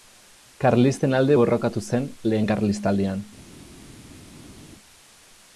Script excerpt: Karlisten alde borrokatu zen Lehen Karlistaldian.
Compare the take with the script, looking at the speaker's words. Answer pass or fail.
pass